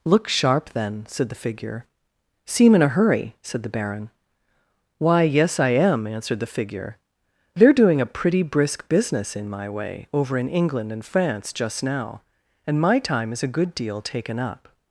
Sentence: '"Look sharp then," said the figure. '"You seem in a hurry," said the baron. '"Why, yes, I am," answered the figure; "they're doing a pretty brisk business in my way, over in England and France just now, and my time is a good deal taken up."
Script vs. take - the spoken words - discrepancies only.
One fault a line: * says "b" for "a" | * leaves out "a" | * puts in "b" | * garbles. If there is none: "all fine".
* leaves out "You"